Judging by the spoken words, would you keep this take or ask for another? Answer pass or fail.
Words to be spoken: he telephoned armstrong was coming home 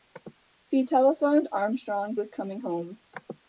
pass